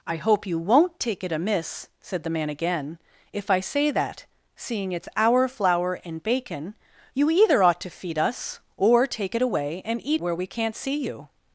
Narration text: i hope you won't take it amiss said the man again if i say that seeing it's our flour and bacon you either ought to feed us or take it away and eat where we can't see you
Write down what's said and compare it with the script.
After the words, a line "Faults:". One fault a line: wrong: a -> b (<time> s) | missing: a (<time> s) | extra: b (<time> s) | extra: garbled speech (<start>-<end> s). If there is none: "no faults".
i hope you won't take it amiss said the man again if i say that seeing it's our flour and bacon you either ought to feed us or take it away and eat where we can't see you
Faults:
no faults